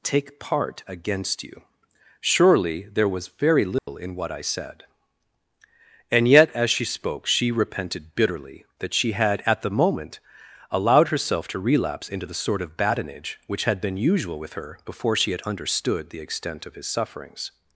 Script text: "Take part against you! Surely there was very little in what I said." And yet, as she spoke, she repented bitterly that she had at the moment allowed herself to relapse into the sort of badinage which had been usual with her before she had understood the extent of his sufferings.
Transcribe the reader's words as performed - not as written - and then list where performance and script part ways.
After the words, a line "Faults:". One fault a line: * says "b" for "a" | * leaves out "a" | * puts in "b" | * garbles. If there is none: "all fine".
"Take part against you! Surely there was very little in what I said." And yet, as she spoke, she repented bitterly that she had at the moment allowed herself to relapse into the sort of badinage which had been usual with her before she had understood the extent of his sufferings.
Faults:
all fine